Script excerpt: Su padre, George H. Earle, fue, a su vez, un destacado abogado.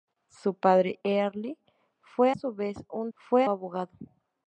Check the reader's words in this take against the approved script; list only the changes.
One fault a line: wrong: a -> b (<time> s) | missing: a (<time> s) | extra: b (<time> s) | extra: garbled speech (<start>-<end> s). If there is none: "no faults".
missing: George H (1.0 s)
missing: a (2.3 s)
wrong: destacado -> fue (3.2 s)